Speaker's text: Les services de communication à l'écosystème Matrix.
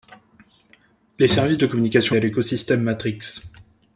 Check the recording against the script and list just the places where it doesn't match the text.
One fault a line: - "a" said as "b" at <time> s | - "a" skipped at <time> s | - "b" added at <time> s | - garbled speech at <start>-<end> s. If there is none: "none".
none